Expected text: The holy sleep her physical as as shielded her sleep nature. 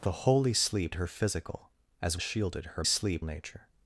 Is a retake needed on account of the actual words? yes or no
no